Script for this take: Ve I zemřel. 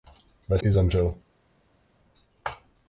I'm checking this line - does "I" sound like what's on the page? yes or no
yes